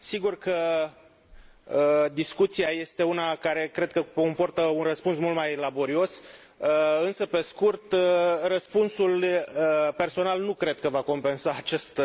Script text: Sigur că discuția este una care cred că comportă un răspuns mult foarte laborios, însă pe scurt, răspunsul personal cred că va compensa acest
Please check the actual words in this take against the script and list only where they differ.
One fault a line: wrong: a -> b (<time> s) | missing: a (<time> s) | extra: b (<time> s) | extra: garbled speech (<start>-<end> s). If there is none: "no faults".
wrong: foarte -> mai (5.4 s)
extra: nu (10.4 s)